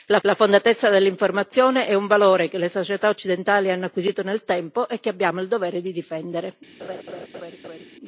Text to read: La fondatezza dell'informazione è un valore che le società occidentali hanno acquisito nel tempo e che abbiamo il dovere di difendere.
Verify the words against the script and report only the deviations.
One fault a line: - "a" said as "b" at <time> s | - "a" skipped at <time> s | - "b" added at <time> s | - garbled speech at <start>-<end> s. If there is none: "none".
- "la" added at 0.2 s